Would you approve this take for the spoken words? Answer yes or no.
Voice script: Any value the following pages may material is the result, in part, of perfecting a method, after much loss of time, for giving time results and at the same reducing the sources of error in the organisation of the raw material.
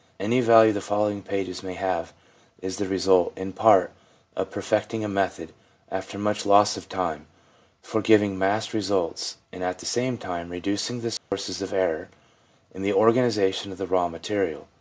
no